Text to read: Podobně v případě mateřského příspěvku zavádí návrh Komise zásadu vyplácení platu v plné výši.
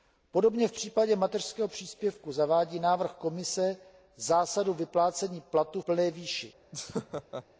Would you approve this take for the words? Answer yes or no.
no